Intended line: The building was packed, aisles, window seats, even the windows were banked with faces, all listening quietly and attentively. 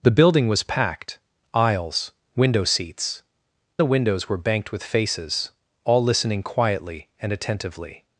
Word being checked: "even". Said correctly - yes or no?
no